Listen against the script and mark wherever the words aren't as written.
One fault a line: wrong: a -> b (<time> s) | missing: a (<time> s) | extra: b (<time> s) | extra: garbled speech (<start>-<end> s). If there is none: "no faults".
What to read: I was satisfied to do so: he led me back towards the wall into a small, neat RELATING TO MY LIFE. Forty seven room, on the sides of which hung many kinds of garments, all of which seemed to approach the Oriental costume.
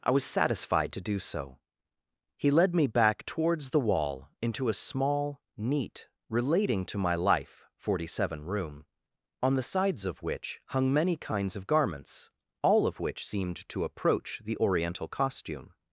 no faults